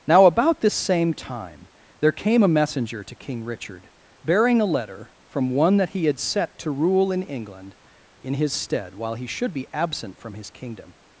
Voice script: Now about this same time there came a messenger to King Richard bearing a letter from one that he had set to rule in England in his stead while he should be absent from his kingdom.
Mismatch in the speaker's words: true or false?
false